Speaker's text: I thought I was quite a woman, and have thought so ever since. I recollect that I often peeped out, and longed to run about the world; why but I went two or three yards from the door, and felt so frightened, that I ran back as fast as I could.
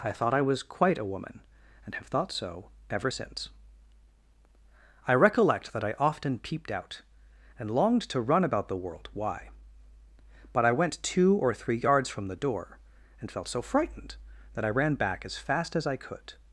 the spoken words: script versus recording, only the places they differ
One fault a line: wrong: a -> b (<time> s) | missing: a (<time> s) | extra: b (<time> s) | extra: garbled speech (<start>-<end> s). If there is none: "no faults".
no faults